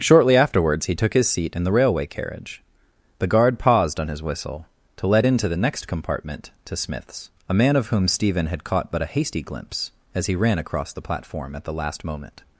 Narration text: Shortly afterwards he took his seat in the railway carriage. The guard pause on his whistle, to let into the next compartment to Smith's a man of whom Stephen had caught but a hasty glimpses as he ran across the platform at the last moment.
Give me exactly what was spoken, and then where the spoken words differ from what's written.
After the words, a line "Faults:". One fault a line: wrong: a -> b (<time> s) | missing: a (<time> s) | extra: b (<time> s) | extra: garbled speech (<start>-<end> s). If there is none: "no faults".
Shortly afterwards he took his seat in the railway carriage. The guard paused on his whistle, to let into the next compartment to Smith's a man of whom Stephen had caught but a hasty glimpse as he ran across the platform at the last moment.
Faults:
wrong: pause -> paused (3.6 s)
wrong: glimpses -> glimpse (9.4 s)